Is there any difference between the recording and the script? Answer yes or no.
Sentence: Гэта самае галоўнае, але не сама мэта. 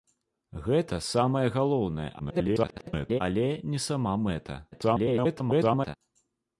yes